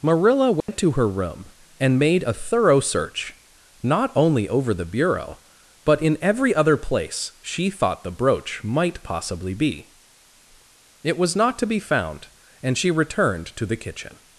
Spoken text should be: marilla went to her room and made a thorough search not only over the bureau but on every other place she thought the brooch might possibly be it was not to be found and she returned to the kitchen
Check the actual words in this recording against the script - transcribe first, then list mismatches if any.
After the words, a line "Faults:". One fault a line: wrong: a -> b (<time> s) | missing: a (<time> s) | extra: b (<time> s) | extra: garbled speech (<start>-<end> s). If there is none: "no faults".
marilla went to her room and made a thorough search not only over the bureau but in every other place she thought the brooch might possibly be it was not to be found and she returned to the kitchen
Faults:
wrong: on -> in (6.0 s)